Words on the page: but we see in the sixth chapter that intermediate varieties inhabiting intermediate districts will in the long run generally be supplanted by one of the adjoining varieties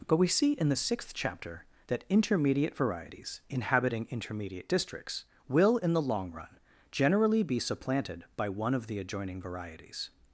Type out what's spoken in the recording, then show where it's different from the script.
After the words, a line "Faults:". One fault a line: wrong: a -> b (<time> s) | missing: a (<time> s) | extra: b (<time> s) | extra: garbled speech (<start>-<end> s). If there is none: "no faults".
but we see in the sixth chapter that intermediate varieties inhabiting intermediate districts will in the long run generally be supplanted by one of the adjoining varieties
Faults:
no faults